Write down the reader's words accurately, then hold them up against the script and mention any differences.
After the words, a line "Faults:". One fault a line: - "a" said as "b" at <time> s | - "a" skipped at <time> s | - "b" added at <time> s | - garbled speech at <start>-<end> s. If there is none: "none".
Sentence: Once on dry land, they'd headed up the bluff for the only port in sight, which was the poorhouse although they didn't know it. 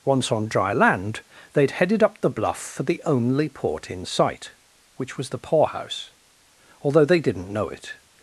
Once on dry land, they'd headed up the bluff for the only port in sight, which was the poorhouse although they didn't know it.
Faults:
none